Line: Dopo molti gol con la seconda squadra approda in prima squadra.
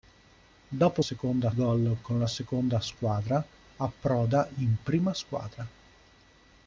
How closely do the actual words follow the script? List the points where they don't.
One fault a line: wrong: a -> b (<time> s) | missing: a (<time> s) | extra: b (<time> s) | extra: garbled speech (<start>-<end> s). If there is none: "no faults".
wrong: molti -> seconda (1.0 s)